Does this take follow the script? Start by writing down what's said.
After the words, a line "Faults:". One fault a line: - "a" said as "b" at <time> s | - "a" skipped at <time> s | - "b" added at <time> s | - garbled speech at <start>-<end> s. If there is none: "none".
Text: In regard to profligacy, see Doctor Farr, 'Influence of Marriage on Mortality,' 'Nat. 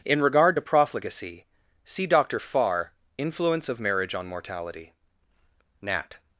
In regard to profligacy, see Doctor Farr, 'Influence of Marriage on Mortality,' 'Nat.
Faults:
none